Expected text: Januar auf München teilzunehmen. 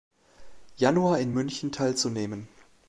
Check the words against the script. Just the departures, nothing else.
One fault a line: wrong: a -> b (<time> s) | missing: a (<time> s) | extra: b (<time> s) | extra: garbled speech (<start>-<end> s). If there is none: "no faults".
wrong: auf -> in (1.2 s)